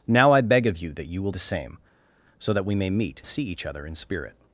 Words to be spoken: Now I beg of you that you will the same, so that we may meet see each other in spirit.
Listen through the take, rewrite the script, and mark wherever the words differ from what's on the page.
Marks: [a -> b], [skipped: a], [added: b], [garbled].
Now I beg of you that you will the same, so that we may meet see each other in spirit.